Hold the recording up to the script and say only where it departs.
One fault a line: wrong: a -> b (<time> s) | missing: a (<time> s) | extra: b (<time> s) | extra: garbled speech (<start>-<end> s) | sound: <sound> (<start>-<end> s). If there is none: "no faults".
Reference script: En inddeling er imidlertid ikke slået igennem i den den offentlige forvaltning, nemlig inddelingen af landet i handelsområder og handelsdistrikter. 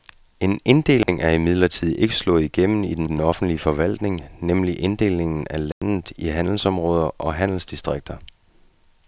sound: dropout (1.0-1.1 s)
sound: dropout (5.7-5.8 s)